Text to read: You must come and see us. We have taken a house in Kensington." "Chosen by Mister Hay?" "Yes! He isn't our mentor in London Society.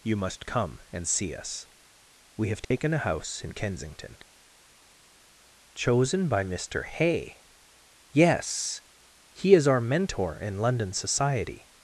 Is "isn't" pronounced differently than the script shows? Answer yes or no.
yes